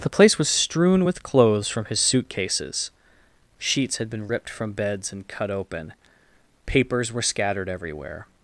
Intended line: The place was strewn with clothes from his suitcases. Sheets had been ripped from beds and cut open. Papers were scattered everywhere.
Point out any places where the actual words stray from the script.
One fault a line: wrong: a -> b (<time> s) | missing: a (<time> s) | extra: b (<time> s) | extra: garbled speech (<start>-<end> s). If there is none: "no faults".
no faults